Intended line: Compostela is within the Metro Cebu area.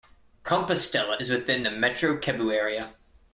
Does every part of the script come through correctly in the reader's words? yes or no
yes